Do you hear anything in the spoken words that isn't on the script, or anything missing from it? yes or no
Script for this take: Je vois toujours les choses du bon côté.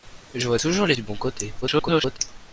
yes